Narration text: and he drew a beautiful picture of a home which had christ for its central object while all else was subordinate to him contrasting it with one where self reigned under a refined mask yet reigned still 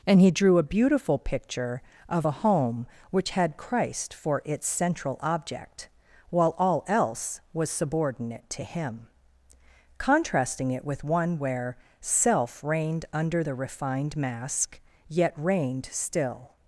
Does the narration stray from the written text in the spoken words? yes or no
yes